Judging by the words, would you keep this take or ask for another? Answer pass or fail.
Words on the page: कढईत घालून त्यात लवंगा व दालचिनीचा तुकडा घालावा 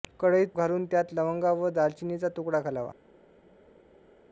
pass